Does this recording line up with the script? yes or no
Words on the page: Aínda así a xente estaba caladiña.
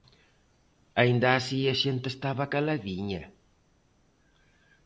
yes